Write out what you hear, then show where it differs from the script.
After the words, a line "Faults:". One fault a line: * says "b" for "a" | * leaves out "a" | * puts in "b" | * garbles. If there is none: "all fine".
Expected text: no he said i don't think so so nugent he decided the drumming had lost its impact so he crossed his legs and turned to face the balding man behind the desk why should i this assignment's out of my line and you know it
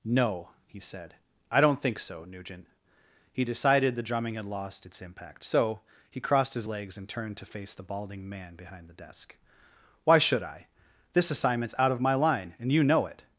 no he said i don't think so nugent he decided the drumming had lost its impact so he crossed his legs and turned to face the balding man behind the desk why should i this assignment's out of my line and you know it
Faults:
* leaves out "so"